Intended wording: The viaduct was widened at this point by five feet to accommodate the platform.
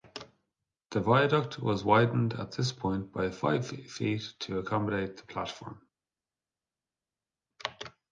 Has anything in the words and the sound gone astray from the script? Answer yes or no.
no